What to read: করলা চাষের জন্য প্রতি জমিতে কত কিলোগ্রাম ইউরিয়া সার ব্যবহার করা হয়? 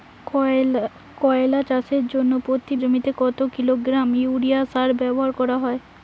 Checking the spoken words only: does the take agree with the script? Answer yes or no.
yes